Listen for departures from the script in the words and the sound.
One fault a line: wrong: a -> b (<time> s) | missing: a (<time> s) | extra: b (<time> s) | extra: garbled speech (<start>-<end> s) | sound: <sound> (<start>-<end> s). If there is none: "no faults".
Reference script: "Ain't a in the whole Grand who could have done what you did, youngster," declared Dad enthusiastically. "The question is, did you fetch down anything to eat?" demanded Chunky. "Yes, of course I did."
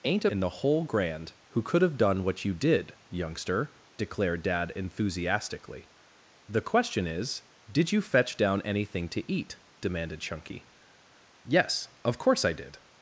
no faults